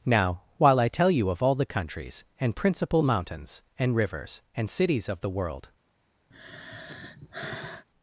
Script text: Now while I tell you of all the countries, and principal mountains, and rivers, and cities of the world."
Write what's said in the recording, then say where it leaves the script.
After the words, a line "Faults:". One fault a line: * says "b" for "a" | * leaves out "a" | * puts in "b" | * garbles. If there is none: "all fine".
Now while I tell you of all the countries, and principal mountains, and rivers, and cities of the world."
Faults:
all fine